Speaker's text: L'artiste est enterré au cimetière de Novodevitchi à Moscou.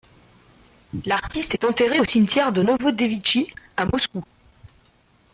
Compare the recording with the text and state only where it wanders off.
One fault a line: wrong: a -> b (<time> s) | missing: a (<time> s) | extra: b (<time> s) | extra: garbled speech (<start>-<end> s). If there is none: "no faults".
no faults